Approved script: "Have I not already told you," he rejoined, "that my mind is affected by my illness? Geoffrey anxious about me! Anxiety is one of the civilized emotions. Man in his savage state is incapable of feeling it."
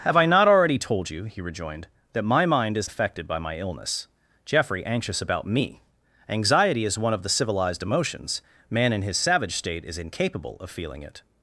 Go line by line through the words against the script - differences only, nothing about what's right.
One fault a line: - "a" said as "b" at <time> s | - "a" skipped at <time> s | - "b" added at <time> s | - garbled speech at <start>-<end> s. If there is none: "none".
none